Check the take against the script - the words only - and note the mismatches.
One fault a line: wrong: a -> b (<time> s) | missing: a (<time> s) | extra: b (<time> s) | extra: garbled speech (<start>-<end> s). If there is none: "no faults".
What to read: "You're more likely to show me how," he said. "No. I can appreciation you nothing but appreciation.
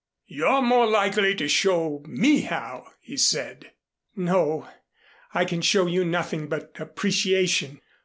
wrong: appreciation -> show (5.6 s)